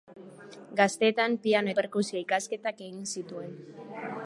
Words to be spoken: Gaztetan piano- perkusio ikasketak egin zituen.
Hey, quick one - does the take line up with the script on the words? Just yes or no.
yes